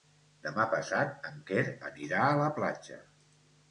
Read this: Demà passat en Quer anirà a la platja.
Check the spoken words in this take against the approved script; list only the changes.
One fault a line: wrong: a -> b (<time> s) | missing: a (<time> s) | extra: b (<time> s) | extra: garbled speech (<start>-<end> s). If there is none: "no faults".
no faults